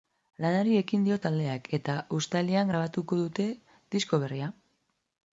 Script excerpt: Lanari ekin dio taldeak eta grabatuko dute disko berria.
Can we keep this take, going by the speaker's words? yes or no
no